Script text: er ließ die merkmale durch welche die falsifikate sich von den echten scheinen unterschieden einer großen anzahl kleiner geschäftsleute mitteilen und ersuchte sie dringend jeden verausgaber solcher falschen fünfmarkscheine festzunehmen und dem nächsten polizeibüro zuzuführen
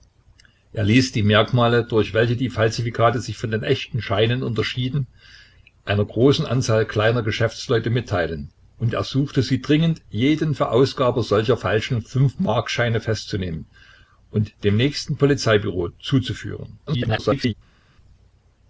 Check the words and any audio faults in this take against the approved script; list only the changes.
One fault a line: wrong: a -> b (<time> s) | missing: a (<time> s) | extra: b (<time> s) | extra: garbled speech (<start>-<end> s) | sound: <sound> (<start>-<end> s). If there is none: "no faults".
extra: garbled speech (16.9-17.5 s)